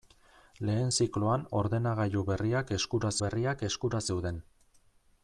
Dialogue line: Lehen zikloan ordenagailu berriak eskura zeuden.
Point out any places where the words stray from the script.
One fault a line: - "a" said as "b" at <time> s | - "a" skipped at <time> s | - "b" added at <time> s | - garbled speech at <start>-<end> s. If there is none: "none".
- "berriak eskura" added at 3.2 s